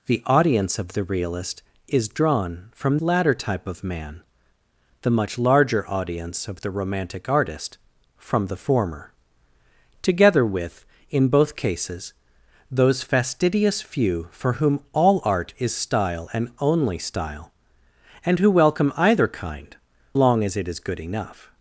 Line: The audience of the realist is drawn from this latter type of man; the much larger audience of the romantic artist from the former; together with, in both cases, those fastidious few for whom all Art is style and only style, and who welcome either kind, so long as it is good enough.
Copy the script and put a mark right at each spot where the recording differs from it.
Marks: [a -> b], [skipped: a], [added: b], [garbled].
The audience of the realist is drawn from [skipped: this] latter type of man; the much larger audience of the romantic artist from the former; together with, in both cases, those fastidious few for whom all Art is style and only style, and who welcome either kind, [skipped: so] long as it is good enough.